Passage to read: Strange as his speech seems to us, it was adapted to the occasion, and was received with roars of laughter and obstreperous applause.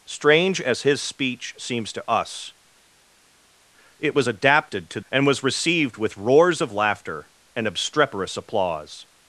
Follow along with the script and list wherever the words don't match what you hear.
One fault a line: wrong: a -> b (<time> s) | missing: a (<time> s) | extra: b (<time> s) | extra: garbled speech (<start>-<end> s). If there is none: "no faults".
missing: the occasion (5.0 s)